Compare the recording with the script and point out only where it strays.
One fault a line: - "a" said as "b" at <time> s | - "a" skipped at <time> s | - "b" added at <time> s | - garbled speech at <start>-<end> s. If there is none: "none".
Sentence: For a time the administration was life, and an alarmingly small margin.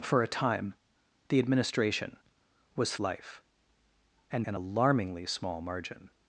none